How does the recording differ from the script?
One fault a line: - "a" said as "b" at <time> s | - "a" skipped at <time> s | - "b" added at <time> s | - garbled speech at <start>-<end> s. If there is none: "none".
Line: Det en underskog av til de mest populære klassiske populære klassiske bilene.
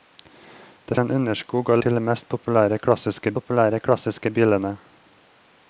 none